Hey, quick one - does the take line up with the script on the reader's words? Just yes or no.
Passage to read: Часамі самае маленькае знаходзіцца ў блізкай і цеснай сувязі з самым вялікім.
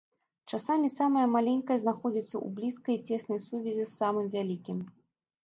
yes